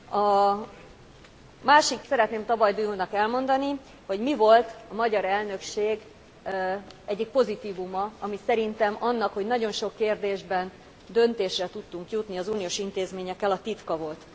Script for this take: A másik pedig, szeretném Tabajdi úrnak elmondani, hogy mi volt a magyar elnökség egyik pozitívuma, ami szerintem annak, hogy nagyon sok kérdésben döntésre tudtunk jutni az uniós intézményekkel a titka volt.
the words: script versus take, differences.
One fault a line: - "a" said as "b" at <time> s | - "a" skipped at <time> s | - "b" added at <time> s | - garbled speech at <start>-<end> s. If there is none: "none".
- "pedig" skipped at 2.0 s